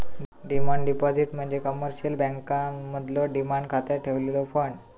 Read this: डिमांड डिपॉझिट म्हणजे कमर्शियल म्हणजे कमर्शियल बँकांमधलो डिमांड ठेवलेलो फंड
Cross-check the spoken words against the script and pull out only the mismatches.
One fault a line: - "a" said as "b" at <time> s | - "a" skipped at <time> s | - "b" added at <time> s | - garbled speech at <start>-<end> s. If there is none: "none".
- "म्हणजे कमर्शियल" skipped at 2.1 s
- "खात्यात" added at 3.7 s